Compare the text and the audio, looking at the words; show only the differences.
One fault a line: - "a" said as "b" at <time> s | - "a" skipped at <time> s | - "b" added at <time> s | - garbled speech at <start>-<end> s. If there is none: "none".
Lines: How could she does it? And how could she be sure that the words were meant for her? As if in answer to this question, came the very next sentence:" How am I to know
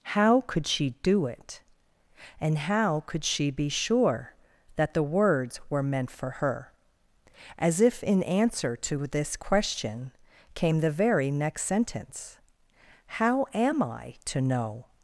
- "does" said as "do" at 1.0 s